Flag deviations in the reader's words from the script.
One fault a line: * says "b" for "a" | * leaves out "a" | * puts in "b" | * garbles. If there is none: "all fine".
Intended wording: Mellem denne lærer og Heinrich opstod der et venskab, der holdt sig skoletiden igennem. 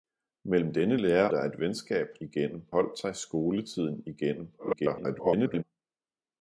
* leaves out "og Heinrich opstod"
* says "igennem" for "der"
* garbles